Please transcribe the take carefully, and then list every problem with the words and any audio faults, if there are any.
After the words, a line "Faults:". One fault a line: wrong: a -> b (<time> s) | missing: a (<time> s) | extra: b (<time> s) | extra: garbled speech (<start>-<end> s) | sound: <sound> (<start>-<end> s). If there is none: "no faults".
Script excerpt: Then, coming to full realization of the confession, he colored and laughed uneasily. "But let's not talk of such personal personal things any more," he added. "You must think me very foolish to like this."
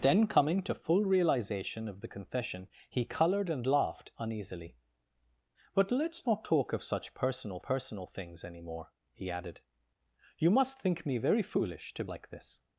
Then, coming to full realization of the confession, he colored and laughed uneasily. "But let's not talk of such personal personal things any more," he added. "You must think me very foolish to like this."
Faults:
no faults